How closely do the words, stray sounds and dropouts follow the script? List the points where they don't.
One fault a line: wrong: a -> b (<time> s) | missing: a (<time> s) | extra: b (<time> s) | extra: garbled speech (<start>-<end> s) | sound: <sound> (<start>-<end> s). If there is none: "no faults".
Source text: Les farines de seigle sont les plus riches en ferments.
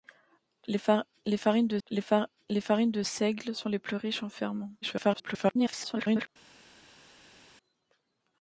extra: les farines de (1.9 s)
extra: garbled speech (4.8-6.3 s)